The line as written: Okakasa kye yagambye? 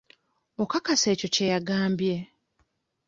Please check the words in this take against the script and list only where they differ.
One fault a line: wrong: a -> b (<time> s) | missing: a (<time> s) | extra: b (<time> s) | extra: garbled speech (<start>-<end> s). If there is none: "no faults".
extra: ekyo (1.1 s)